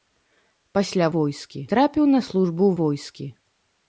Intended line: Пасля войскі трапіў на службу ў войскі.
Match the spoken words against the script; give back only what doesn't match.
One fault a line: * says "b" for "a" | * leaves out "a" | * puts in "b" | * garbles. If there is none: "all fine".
all fine